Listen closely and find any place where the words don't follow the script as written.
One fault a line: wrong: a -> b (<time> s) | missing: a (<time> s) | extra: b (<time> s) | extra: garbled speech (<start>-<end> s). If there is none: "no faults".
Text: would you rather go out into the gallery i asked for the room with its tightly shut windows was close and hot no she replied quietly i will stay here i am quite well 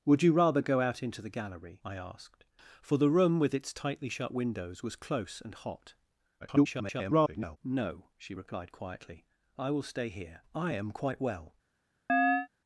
extra: garbled speech (6.4-7.6 s)